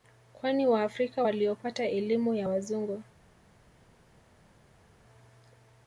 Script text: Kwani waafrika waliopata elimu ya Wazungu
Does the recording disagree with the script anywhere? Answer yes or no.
no